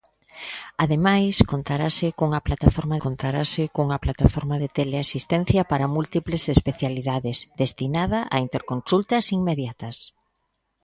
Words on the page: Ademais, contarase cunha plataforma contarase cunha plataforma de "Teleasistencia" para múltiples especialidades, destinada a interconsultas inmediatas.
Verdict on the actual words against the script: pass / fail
pass